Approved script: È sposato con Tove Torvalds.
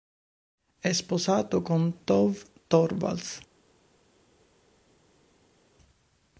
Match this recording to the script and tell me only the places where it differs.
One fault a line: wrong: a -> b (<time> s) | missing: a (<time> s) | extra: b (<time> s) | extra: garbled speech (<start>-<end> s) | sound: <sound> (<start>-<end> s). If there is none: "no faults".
no faults